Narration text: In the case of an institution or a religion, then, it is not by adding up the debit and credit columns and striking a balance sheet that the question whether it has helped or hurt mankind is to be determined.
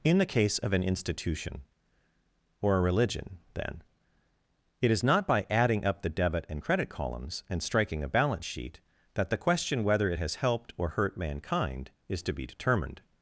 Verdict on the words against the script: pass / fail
pass